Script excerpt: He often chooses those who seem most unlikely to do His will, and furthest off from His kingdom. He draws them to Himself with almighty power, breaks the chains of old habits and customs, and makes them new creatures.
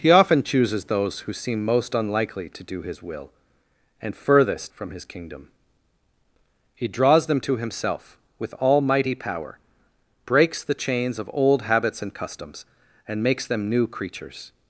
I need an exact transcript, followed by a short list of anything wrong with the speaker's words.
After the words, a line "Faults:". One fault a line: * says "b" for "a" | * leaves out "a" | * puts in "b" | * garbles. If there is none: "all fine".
He often chooses those who seem most unlikely to do His will, and furthest from His kingdom. He draws them to Himself with almighty power, breaks the chains of old habits and customs, and makes them new creatures.
Faults:
* leaves out "off"